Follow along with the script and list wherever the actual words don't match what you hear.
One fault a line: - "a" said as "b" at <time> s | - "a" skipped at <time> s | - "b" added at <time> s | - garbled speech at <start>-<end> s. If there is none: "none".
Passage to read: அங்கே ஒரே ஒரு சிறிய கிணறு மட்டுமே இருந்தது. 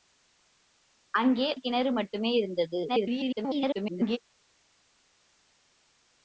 - "ஒரே ஒரு சிறிய" skipped at 1.5 s
- garbled speech at 2.9-4.2 s